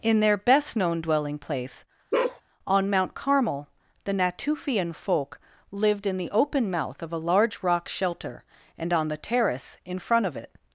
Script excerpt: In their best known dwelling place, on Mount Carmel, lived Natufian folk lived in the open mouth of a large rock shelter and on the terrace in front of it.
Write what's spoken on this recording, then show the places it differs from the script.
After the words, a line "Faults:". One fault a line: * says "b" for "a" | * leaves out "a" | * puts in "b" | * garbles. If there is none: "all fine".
In their best known dwelling place, on Mount Carmel, the Natufian folk lived in the open mouth of a large rock shelter and on the terrace in front of it.
Faults:
* says "the" for "lived"